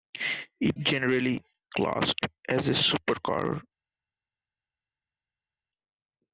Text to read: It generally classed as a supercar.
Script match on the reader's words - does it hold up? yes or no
yes